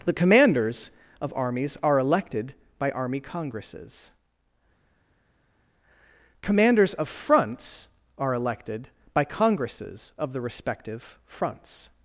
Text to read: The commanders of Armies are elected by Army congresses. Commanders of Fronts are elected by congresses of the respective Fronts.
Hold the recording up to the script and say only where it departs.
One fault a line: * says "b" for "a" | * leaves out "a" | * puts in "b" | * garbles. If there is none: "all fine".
all fine